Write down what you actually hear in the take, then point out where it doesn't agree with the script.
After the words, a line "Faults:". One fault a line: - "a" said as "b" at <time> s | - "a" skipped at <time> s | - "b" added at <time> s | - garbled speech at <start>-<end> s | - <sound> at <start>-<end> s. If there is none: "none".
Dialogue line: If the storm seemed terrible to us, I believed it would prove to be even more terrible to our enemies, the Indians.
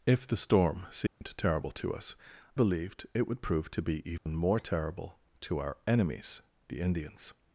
If the storm seemed terrible to us, believed it would prove to be even more terrible to our enemies, the Indians.
Faults:
- dropout at 1.1-1.2 s
- "I" skipped at 2.1 s
- dropout at 4.2-4.3 s